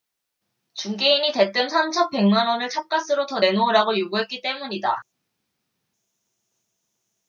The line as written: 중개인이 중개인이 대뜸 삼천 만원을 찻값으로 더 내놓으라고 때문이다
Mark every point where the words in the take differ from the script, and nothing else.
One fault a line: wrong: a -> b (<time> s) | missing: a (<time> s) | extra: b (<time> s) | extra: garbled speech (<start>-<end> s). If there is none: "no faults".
missing: 중개인이 (1.3 s)
extra: 백 (2.1 s)
extra: 요구했기 (4.0 s)